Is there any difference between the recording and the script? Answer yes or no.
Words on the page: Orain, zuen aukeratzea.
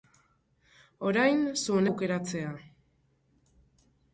no